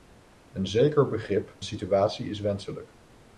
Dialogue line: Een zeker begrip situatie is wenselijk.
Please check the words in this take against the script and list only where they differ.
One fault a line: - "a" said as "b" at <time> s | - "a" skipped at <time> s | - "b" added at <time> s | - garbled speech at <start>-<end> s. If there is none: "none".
none